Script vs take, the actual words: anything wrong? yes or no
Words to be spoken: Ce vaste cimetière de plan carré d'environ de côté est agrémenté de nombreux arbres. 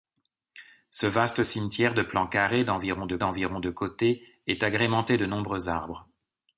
yes